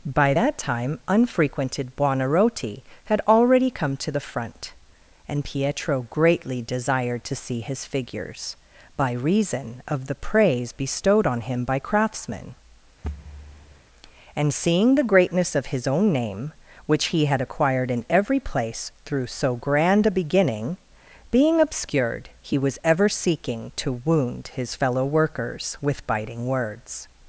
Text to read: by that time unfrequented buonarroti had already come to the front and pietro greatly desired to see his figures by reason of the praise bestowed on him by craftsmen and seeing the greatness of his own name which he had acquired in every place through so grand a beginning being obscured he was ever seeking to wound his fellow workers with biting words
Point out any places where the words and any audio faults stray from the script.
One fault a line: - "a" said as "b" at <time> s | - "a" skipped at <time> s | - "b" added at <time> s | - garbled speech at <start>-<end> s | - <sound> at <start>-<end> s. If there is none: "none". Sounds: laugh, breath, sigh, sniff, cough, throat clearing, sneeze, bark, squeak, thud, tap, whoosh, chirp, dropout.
- thud at 13.0-13.8 s